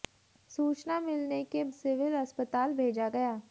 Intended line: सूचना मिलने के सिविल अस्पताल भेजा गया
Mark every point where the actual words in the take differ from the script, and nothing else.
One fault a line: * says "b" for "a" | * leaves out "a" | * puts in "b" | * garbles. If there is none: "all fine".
all fine